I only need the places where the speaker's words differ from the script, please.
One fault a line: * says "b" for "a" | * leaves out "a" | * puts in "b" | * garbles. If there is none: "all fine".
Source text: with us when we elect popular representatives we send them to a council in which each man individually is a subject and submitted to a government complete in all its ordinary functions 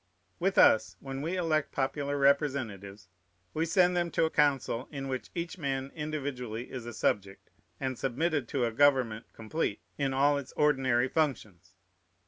all fine